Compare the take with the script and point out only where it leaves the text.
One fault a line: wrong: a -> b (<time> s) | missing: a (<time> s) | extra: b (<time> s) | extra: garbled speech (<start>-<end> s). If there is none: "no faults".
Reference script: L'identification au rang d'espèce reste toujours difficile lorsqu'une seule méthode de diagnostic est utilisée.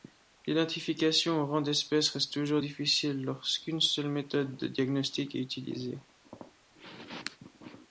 no faults